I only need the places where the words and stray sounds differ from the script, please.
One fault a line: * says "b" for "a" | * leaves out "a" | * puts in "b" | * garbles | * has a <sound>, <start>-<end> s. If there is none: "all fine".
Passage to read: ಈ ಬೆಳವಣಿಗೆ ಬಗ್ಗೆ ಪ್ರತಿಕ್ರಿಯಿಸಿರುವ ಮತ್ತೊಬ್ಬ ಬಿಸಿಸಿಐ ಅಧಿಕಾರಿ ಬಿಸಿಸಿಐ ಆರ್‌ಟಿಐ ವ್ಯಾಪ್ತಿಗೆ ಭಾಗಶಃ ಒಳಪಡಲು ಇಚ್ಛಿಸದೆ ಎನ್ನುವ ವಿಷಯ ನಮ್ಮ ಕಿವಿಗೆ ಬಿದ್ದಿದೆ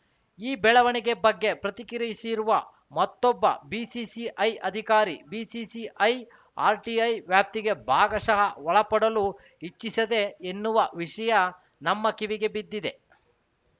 all fine